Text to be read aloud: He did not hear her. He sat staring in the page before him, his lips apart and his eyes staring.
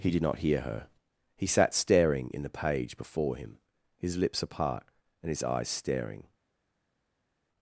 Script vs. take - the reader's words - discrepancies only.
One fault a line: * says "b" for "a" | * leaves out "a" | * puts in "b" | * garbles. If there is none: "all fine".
all fine